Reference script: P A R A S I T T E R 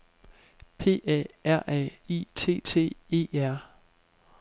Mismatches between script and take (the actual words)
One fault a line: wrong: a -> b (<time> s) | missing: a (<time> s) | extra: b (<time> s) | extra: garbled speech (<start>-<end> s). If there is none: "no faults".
missing: S (2.0 s)